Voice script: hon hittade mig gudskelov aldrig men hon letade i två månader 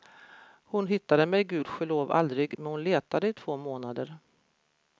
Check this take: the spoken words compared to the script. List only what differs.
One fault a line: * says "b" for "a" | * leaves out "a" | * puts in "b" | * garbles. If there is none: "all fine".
all fine